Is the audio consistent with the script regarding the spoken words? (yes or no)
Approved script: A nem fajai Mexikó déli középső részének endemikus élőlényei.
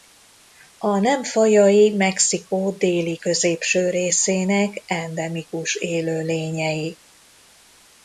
yes